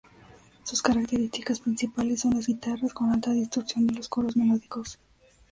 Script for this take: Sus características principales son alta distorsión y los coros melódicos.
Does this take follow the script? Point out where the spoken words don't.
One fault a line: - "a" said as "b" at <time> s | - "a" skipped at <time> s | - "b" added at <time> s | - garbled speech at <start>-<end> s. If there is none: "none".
- "las guitarras con" added at 2.3 s